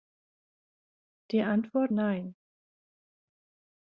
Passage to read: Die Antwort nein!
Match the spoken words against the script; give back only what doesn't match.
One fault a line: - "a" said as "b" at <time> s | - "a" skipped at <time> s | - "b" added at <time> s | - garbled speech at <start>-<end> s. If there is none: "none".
none